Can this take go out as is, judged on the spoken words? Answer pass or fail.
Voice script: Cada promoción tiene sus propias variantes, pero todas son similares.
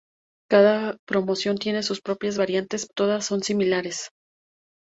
fail